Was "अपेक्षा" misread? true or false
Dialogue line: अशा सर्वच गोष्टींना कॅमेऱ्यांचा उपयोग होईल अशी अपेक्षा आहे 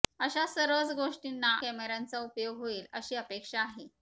false